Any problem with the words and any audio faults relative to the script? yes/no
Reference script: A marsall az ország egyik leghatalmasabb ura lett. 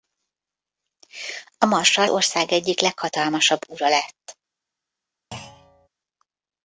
yes